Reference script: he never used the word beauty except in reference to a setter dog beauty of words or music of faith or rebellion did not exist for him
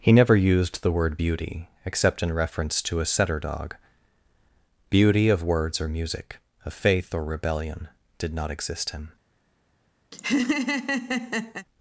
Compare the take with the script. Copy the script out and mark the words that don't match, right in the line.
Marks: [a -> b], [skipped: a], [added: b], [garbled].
he never used the word beauty except in reference to a setter dog beauty of words or music of faith or rebellion did not exist [skipped: for] him